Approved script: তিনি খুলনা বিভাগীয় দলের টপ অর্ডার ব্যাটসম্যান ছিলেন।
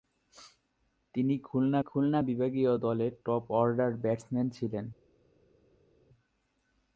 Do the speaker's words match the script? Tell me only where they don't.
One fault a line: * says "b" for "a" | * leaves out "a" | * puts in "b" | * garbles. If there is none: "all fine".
* puts in "খুলনা"